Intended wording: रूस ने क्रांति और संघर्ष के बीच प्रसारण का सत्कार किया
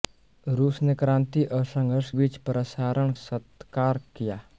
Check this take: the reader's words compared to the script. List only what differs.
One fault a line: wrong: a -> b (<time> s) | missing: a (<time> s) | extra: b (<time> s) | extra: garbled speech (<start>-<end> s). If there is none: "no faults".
missing: के (2.1 s)
missing: का (3.1 s)